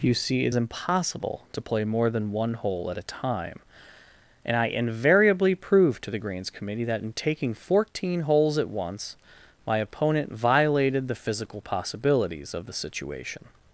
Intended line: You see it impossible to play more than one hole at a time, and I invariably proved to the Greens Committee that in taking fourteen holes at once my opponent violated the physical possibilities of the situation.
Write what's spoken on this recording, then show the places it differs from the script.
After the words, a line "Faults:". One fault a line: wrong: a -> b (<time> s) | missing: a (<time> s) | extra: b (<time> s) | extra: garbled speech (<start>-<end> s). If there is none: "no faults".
You see it impossible to play more than one hole at a time, and I invariably proved to the Greens Committee that in taking fourteen holes at once my opponent violated the physical possibilities of the situation.
Faults:
no faults